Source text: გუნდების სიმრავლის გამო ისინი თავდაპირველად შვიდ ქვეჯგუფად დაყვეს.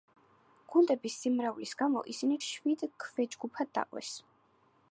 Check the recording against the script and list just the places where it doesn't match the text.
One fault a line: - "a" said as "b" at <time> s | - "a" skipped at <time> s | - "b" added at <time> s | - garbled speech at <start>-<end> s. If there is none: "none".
- "თავდაპირველად" skipped at 2.4 s